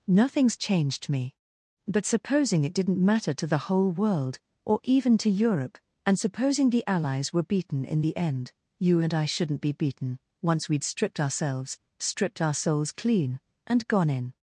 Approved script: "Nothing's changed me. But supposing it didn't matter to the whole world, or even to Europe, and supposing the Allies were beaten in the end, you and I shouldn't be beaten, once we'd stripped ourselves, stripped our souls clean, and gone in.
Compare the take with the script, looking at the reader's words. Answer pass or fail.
pass